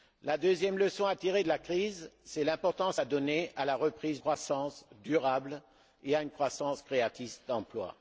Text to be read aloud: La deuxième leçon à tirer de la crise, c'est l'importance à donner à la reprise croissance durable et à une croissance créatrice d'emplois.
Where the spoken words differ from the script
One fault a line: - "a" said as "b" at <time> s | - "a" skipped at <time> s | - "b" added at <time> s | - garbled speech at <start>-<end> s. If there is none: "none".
none